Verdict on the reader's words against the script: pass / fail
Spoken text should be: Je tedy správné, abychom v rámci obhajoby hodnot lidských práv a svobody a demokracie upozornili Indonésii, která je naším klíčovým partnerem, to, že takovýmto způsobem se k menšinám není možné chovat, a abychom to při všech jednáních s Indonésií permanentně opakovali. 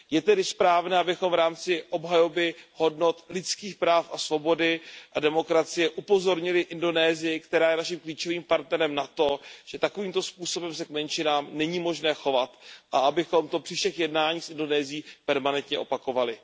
fail